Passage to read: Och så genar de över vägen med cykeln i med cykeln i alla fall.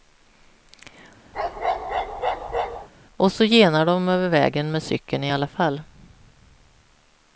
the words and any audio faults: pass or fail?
fail